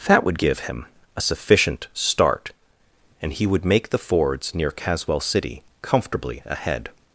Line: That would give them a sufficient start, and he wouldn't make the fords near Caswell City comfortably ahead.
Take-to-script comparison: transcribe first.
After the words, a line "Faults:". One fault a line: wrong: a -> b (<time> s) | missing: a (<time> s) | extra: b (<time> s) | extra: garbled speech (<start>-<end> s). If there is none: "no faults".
That would give him a sufficient start, and he would make the fords near Caswell City comfortably ahead.
Faults:
wrong: them -> him (0.6 s)
wrong: wouldn't -> would (3.5 s)